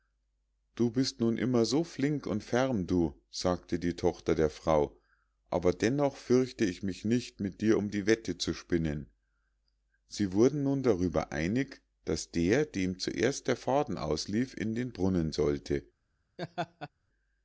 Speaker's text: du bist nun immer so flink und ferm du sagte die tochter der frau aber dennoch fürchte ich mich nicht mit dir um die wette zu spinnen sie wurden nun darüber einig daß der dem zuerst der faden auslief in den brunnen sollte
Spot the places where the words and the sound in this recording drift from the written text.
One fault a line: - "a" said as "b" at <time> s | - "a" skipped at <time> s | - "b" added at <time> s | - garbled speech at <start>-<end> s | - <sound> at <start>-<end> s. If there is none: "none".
- laugh at 16.4-16.9 s